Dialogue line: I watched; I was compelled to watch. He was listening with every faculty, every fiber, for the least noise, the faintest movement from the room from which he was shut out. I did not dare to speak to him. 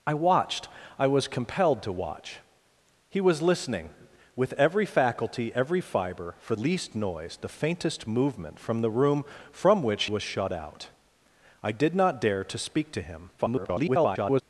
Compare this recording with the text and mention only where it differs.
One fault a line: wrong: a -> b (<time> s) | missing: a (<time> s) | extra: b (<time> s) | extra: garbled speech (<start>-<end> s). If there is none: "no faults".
missing: the (6.5 s)
missing: he (10.1 s)
extra: garbled speech (13.4-14.4 s)